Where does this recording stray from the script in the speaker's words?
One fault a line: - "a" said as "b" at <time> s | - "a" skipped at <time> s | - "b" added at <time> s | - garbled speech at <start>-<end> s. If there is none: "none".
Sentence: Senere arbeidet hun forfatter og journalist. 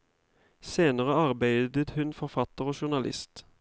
none